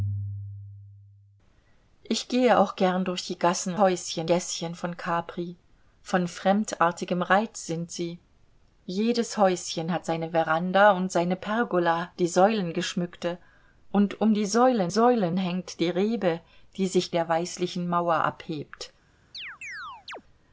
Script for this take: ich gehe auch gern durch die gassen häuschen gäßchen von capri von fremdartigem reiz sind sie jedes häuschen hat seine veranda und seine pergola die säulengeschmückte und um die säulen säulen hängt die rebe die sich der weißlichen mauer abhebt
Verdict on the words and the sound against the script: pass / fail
fail